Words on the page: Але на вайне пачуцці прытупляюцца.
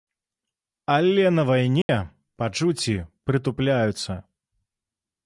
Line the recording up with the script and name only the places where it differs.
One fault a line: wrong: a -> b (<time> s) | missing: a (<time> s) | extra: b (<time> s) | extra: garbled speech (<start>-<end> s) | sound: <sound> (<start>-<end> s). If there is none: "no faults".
sound: dropout (1.8-1.9 s)